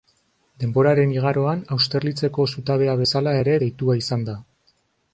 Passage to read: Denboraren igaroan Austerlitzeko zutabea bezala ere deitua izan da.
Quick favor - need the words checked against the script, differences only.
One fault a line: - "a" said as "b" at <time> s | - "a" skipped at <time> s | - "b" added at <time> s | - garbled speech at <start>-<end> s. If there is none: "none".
none